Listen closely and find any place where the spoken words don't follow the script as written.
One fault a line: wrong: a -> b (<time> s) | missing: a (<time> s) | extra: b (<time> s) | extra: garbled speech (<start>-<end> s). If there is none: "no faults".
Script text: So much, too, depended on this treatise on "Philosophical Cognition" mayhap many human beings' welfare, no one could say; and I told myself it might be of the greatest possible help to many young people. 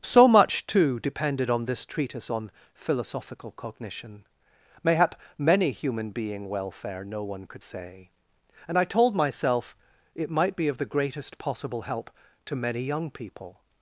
wrong: beings -> being (6.1 s)